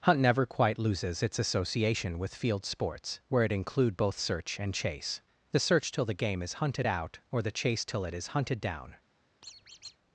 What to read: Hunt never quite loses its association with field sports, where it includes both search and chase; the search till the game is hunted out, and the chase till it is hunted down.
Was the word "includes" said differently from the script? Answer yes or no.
yes